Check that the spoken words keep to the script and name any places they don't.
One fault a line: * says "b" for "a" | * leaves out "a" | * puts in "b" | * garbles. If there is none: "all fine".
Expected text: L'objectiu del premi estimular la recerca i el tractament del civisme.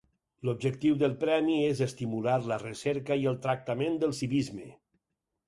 * puts in "és"